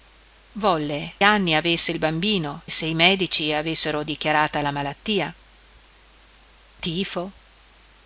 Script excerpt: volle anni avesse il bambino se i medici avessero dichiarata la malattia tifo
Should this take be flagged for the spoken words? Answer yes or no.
no